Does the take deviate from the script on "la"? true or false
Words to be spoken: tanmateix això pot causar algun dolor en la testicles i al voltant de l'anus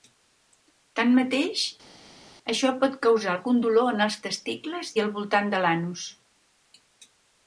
true